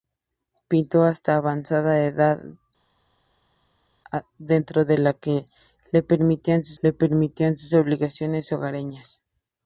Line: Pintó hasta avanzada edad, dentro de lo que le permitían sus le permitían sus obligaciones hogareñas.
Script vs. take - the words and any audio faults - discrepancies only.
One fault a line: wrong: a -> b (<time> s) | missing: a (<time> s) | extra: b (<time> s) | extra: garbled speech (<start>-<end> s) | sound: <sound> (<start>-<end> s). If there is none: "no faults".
no faults